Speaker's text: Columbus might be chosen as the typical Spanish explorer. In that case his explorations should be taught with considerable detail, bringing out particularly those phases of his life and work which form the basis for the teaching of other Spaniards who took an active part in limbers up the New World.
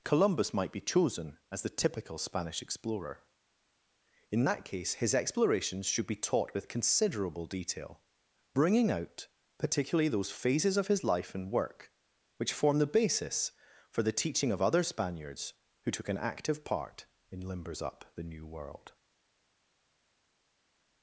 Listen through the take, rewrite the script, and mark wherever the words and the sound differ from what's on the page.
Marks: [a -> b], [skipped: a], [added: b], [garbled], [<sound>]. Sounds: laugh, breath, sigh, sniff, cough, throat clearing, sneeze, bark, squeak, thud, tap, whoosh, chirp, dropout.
Columbus might be chosen as the typical Spanish explorer. In that case his explorations should be taught with considerable detail, bringing out particularly those phases of his life and work which form the basis for the teaching of other Spaniards who took an active part in limbers up the New World.